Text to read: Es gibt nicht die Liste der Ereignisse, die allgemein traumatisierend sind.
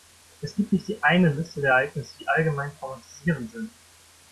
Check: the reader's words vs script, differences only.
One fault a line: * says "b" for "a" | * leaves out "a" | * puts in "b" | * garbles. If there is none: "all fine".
* puts in "eine"